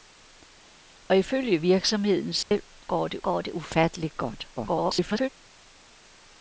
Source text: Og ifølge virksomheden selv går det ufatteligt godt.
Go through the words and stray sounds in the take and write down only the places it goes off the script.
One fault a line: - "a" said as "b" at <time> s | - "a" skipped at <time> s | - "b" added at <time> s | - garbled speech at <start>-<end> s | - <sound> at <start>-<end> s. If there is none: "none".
- dropout at 2.4-2.5 s
- "går det" added at 3.2 s
- garbled speech at 4.6-5.3 s